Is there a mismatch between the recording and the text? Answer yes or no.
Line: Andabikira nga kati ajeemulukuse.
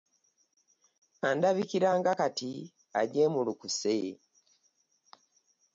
no